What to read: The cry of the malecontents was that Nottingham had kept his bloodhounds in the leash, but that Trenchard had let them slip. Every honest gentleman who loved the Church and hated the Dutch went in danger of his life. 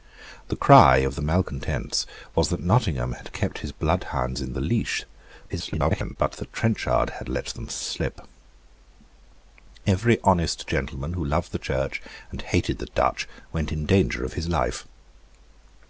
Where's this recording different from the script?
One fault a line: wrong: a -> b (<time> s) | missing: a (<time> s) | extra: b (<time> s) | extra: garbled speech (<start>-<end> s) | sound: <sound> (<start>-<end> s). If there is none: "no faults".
extra: garbled speech (5.5-6.2 s)